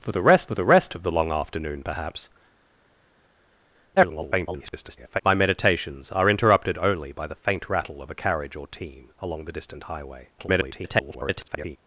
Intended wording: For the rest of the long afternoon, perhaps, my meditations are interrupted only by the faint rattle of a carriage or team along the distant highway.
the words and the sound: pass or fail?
fail